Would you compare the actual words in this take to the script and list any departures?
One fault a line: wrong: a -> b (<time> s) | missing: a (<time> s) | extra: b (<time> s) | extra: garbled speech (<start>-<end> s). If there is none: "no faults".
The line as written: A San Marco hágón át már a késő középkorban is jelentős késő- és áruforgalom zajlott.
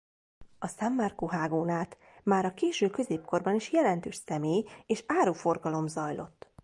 wrong: késő -> személy (4.2 s)